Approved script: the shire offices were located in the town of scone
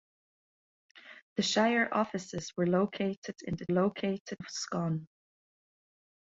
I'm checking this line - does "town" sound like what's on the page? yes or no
no